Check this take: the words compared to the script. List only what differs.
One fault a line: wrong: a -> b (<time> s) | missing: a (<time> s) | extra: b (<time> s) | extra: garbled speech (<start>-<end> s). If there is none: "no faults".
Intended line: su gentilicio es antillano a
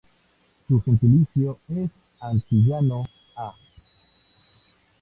no faults